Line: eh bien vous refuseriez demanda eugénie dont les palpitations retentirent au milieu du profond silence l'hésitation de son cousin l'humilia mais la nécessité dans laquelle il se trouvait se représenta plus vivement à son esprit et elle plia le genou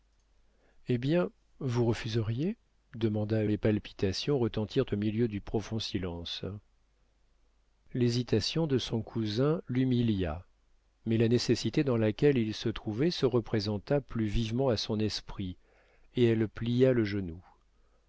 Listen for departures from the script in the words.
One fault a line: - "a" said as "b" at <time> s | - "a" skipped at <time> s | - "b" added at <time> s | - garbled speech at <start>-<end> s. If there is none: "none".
- "eugénie dont" skipped at 3.4 s